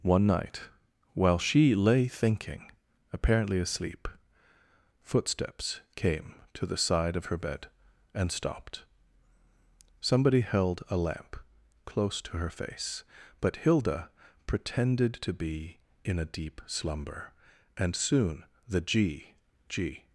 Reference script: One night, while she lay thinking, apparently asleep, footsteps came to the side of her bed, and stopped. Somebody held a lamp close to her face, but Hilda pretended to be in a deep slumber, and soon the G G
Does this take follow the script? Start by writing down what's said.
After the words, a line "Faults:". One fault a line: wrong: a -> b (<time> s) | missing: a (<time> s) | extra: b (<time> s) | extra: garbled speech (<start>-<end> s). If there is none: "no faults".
One night, while she lay thinking, apparently asleep, footsteps came to the side of her bed, and stopped. Somebody held a lamp close to her face, but Hilda pretended to be in a deep slumber, and soon the G G
Faults:
no faults